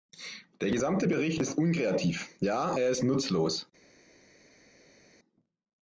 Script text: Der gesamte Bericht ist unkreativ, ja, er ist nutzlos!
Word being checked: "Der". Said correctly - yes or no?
yes